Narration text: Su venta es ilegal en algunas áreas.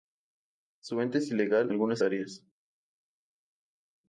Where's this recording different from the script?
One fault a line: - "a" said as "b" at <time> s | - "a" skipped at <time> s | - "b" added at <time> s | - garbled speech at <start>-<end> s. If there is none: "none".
- "en" skipped at 1.7 s